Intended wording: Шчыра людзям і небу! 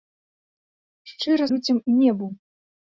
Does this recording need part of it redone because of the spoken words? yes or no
no